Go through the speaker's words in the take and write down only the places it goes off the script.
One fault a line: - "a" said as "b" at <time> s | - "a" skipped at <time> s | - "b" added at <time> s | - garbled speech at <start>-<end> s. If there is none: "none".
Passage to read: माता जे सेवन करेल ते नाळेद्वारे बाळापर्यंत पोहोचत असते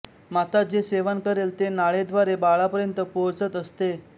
none